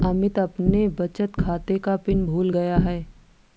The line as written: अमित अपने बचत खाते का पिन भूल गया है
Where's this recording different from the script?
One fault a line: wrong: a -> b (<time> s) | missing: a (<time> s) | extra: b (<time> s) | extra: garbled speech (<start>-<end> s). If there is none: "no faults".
no faults